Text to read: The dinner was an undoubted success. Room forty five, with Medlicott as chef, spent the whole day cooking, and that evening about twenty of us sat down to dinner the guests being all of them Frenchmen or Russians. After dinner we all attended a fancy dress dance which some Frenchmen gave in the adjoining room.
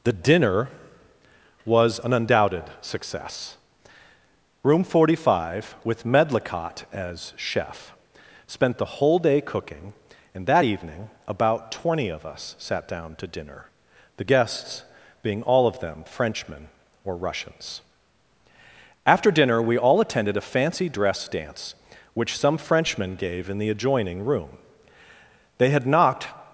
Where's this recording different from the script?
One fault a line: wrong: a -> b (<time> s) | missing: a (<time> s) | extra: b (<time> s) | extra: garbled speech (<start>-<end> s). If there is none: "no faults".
extra: They had knocked (25.6 s)